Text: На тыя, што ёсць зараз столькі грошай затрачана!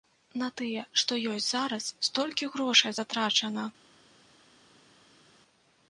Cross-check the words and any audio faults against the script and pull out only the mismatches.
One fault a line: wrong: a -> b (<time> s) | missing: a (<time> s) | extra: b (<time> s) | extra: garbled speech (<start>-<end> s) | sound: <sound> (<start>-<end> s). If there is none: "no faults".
no faults